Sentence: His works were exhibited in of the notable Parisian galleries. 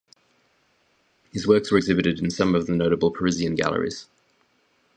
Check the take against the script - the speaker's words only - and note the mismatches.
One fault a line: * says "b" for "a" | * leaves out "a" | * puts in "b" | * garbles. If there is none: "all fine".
* puts in "some"